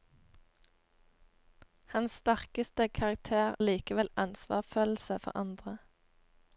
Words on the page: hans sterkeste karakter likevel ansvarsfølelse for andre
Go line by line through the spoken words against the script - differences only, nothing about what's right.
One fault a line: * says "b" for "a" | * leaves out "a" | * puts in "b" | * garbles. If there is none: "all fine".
all fine